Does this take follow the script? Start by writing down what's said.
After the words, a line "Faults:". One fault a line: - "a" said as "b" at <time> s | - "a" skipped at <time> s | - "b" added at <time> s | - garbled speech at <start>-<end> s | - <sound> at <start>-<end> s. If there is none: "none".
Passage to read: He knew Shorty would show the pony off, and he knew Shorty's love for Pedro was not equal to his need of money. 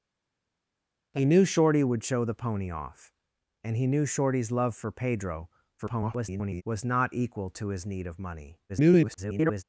He knew Shorty would show the pony off, and he knew Shorty's love for Pedro [garbled] was not equal to his need of money. [garbled]
Faults:
- garbled speech at 5.8-6.6 s
- garbled speech at 8.7-9.6 s